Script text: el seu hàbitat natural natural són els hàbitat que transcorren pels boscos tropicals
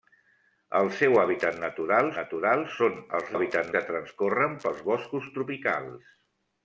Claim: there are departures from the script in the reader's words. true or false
false